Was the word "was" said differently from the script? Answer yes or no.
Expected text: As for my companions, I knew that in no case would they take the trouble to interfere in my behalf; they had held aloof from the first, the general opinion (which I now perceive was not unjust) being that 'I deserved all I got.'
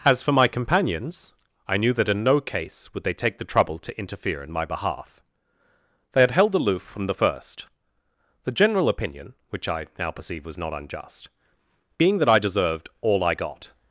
no